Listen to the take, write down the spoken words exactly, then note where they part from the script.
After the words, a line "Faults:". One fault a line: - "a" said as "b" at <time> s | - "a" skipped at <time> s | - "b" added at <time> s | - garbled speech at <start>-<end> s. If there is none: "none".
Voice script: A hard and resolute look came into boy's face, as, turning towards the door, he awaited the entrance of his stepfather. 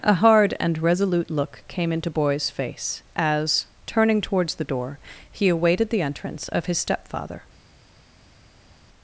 A hard and resolute look came into boy's face, as, turning towards the door, he awaited the entrance of his stepfather.
Faults:
none